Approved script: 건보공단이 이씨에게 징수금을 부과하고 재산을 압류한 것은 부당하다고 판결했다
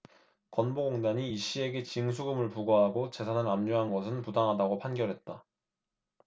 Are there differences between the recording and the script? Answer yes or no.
no